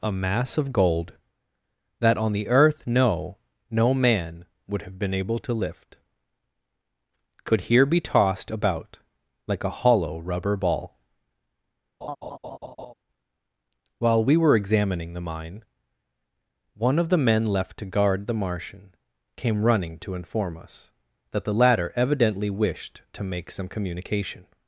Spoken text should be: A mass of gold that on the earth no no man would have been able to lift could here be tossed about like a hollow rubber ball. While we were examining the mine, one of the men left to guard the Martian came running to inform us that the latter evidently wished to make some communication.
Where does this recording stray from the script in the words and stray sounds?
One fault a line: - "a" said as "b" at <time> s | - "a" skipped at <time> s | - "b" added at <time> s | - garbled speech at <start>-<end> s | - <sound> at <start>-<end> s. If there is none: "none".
- laugh at 12.0-12.9 s